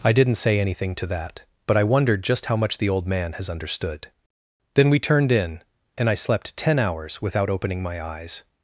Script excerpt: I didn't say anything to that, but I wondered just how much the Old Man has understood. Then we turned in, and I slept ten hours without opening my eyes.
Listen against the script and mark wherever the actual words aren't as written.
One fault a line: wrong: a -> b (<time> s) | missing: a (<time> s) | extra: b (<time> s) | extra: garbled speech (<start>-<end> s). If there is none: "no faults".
no faults